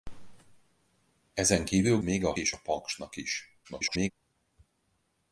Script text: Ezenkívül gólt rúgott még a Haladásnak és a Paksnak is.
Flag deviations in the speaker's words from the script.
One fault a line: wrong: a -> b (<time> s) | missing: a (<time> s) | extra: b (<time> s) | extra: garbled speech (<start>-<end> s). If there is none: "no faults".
missing: gólt rúgott (2.0 s)
missing: Haladásnak (2.3 s)
extra: garbled speech (3.6-4.1 s)